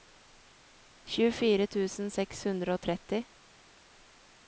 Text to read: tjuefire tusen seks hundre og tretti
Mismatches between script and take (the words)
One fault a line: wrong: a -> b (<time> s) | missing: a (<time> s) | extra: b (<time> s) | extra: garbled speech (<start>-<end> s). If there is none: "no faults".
no faults